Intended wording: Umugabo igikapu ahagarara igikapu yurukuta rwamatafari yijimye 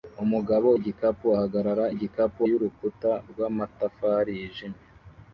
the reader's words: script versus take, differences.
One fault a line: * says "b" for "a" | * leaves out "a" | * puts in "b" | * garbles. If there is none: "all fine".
all fine